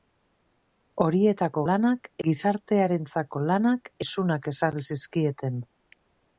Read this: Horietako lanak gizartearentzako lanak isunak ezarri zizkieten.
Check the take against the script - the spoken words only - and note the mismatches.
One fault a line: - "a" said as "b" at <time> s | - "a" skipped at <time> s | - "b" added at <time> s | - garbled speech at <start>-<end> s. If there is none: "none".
none